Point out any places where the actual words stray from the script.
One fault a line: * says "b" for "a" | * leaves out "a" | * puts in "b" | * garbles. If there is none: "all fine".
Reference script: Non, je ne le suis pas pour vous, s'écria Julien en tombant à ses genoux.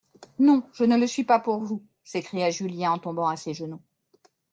all fine